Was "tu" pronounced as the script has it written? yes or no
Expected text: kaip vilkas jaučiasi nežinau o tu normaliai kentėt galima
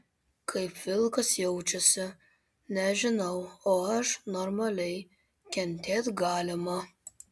no